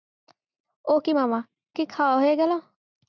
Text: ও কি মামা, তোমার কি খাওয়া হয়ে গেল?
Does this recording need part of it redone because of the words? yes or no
yes